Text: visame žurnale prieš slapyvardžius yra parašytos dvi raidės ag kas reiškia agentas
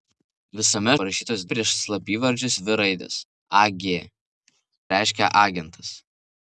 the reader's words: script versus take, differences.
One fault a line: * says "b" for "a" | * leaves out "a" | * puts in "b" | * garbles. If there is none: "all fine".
* says "parašytos" for "žurnale"
* leaves out "yra parašytos"
* leaves out "kas"